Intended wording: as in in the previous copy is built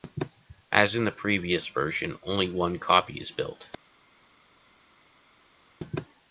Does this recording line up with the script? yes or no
no